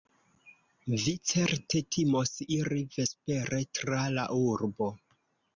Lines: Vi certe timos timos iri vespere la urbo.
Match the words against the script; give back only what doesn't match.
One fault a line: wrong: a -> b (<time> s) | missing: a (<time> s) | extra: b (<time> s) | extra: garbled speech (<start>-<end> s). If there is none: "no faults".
missing: timos (2.3 s)
extra: tra (3.8 s)